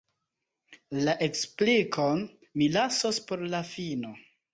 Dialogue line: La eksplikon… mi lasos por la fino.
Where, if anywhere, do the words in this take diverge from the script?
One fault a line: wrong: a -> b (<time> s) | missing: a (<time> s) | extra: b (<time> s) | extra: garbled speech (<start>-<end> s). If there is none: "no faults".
no faults